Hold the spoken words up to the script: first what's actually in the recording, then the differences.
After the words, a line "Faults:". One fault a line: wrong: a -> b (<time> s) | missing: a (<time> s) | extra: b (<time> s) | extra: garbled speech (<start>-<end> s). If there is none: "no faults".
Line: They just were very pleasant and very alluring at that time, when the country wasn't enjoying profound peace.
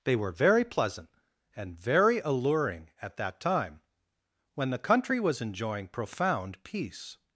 They were very pleasant and very alluring at that time, when the country was enjoying profound peace.
Faults:
missing: just (0.1 s)
wrong: wasn't -> was (5.2 s)